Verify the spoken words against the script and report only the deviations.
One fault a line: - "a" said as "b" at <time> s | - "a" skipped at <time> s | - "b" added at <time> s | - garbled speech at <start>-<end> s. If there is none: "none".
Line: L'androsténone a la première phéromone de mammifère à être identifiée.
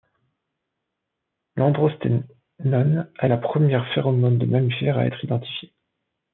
none